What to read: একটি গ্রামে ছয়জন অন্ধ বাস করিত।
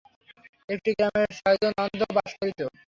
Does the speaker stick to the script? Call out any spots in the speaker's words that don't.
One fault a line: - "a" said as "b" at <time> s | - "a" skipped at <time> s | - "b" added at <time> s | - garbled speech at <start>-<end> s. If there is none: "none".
none